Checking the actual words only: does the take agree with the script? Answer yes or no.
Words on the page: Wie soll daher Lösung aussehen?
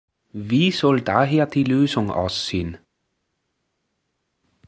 no